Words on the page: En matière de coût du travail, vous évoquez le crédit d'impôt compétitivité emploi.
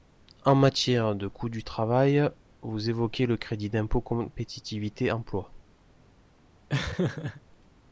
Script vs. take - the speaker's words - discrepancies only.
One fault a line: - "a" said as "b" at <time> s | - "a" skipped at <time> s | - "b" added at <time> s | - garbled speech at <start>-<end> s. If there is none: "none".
none